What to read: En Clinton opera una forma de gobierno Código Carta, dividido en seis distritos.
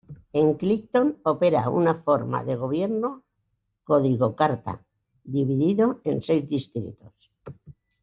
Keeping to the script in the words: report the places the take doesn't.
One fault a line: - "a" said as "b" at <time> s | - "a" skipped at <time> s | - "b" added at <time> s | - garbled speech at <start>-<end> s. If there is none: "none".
none